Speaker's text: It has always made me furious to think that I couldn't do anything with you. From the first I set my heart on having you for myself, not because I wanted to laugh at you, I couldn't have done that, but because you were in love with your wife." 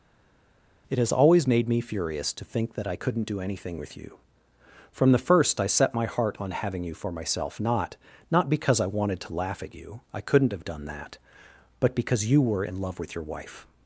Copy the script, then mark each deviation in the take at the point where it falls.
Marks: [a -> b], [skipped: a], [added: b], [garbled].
It has always made me furious to think that I couldn't do anything with you. From the first I set my heart on having you for myself, not [added: not] because I wanted to laugh at you, I couldn't have done that, but because you were in love with your wife."